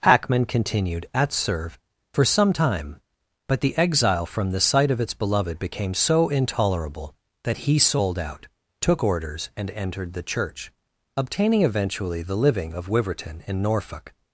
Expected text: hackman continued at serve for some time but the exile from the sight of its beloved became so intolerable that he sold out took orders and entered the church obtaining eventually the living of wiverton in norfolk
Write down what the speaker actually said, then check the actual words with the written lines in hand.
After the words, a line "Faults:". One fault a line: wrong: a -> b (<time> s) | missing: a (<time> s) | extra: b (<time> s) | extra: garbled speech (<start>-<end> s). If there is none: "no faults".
hackman continued at serve for some time but the exile from the sight of its beloved became so intolerable that he sold out took orders and entered the church obtaining eventually the living of wiverton in norfolk
Faults:
no faults